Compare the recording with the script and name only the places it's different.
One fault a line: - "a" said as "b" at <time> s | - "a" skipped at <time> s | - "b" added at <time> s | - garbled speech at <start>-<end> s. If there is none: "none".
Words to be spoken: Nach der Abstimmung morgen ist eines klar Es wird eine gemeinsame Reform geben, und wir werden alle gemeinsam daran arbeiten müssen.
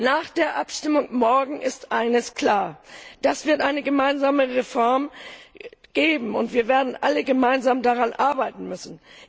none